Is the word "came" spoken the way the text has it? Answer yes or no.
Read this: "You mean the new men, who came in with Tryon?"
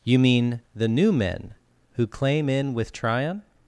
no